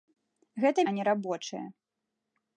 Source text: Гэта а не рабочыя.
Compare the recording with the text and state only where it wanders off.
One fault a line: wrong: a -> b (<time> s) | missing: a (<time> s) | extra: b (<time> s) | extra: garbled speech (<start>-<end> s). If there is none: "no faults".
no faults